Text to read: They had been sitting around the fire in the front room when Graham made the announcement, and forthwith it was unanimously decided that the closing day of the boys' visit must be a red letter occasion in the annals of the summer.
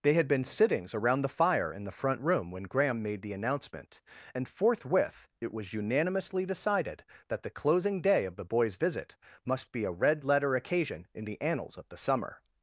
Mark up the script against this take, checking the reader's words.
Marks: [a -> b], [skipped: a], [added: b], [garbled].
They had been [sitting -> sittings] around the fire in the front room when Graham made the announcement, and forthwith it was unanimously decided that the closing day of the boys' visit must be a red letter occasion in the annals of the summer.